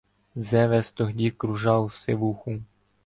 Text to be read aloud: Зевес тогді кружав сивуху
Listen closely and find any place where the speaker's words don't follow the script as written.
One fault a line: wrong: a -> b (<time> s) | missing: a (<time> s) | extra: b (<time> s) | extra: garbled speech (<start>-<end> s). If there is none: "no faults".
no faults